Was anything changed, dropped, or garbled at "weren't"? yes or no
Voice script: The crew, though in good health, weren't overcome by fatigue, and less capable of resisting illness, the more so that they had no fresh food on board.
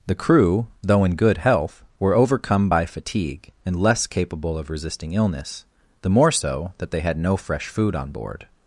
yes